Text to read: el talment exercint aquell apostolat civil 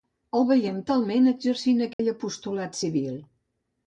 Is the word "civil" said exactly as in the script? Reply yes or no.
yes